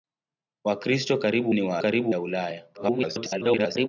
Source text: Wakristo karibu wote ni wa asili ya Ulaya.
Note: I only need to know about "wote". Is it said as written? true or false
false